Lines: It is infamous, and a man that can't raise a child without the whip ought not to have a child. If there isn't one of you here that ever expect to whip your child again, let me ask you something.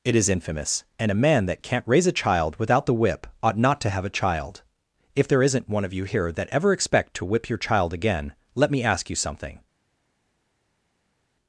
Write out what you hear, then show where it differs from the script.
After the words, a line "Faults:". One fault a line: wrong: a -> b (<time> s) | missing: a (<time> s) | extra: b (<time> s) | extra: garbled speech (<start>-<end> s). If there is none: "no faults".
It is infamous, and a man that can't raise a child without the whip ought not to have a child. If there isn't one of you here that ever expect to whip your child again, let me ask you something.
Faults:
no faults